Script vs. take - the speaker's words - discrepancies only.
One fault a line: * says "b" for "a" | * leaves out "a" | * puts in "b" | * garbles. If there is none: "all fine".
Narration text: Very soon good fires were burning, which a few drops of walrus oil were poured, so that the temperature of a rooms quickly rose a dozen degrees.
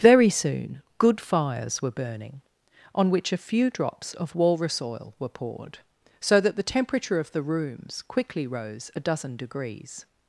* puts in "on"
* says "the" for "a"